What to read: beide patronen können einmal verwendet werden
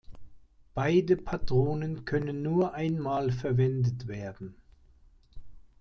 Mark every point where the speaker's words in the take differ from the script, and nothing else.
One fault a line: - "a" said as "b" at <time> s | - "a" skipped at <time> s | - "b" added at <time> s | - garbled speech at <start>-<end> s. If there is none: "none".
- "nur" added at 2.4 s